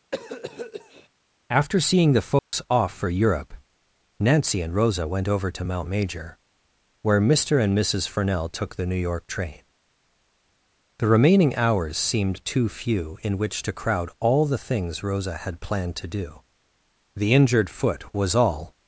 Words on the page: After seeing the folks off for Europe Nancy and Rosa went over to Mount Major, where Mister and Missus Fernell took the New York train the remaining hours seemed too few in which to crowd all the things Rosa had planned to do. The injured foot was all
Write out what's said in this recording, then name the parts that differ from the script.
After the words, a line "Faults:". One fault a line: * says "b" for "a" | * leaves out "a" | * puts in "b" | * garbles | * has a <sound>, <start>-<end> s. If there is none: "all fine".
After seeing the folks off for Europe Nancy and Rosa went over to Mount Major, where Mister and Missus Fernell took the New York train the remaining hours seemed too few in which to crowd all the things Rosa had planned to do. The injured foot was all
Faults:
* has a cough, 0.1-1.1 s
* has a dropout, 2.4-2.5 s